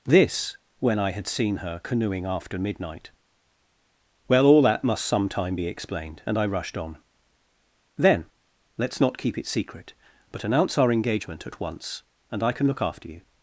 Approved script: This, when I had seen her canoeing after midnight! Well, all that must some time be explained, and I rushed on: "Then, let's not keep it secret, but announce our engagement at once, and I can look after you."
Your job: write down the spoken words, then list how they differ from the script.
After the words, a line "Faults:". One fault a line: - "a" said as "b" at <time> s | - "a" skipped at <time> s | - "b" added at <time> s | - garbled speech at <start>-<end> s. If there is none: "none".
This, when I had seen her canoeing after midnight! Well, all that must some time be explained, and I rushed on: "Then, let's not keep it secret, but announce our engagement at once, and I can look after you."
Faults:
none